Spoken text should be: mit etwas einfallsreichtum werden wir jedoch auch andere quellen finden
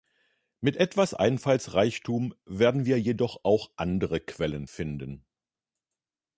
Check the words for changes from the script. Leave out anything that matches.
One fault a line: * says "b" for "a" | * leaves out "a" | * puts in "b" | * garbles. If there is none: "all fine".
all fine